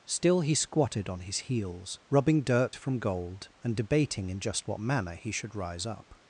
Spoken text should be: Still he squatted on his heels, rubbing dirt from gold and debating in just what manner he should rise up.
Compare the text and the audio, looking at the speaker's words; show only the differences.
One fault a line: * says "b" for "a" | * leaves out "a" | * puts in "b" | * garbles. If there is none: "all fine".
all fine